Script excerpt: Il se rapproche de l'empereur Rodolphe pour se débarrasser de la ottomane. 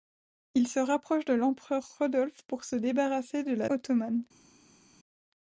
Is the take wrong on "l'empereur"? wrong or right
right